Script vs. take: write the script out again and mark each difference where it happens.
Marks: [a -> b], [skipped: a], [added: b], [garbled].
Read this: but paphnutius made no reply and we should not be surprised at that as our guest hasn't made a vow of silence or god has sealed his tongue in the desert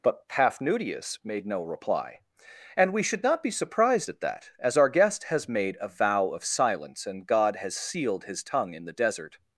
but paphnutius made no reply and we should not be surprised at that as our guest [hasn't -> has] made a vow of silence [or -> and] god has sealed his tongue in the desert